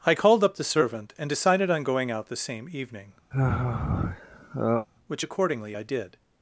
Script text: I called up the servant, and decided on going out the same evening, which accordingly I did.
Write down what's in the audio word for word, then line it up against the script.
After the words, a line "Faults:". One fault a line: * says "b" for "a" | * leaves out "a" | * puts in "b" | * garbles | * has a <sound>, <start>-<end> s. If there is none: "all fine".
I called up the servant, and decided on going out the same evening, which accordingly I did.
Faults:
* has a sigh, 3.3-4.9 s